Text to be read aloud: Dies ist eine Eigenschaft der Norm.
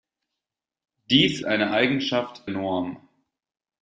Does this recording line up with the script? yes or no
no